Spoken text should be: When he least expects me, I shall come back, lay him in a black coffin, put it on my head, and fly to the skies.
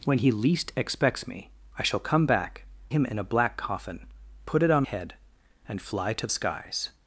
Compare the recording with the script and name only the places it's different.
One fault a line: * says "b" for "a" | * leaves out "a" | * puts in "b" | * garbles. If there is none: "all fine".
* leaves out "lay"
* leaves out "my"
* leaves out "the"